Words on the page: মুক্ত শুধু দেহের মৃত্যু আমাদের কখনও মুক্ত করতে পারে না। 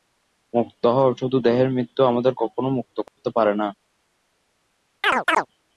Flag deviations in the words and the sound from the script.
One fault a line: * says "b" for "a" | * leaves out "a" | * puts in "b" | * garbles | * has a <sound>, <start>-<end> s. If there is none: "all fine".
* puts in "হও"
* has a dropout, 3.1-3.2 s
* has a chirp, 5.0-5.5 s